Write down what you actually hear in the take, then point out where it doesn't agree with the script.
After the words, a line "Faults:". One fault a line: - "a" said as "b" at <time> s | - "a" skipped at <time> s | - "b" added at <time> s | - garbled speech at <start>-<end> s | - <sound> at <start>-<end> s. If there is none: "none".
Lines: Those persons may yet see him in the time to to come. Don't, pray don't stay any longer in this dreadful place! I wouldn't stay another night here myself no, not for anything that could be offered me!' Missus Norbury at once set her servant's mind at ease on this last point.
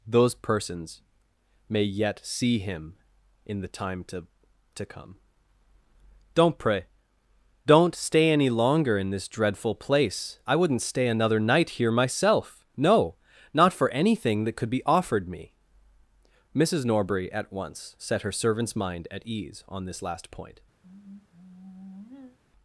Those persons may yet see him in the time to to come. Don't, pray don't stay any longer in this dreadful place! I wouldn't stay another night here myself no, not for anything that could be offered me!' Missus Norbury at once set her servant's mind at ease on this last point.
Faults:
- sigh at 20.8-22.4 s